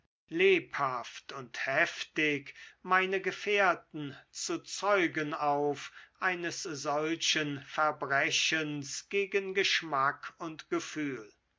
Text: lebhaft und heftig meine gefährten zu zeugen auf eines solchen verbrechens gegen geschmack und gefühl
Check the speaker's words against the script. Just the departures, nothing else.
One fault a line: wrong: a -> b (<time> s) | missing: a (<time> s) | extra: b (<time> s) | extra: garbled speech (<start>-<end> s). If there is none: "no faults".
no faults